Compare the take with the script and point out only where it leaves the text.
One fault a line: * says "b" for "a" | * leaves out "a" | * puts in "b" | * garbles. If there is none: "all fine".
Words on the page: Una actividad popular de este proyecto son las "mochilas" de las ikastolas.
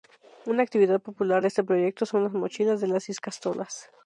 all fine